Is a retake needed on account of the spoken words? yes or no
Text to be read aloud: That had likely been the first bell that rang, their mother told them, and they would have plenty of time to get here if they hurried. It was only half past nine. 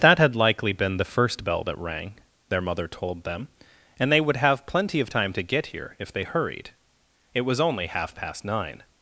no